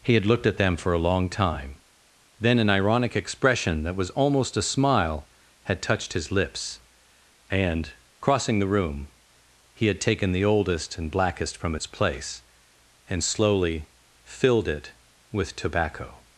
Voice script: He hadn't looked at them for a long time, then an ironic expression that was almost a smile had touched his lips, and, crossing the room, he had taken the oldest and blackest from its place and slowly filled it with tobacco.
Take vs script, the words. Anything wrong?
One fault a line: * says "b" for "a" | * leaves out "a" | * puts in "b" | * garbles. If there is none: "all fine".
* says "had" for "hadn't"